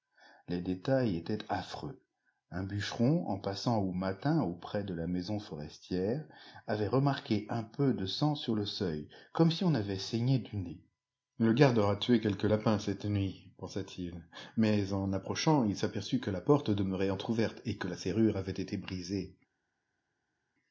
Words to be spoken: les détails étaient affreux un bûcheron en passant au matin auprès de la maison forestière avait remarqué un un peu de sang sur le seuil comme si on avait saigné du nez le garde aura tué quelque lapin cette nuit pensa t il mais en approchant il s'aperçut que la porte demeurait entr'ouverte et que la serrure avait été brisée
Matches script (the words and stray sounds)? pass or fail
fail